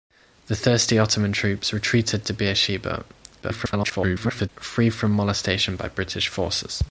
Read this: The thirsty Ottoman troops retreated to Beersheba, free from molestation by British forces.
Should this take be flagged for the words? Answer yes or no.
yes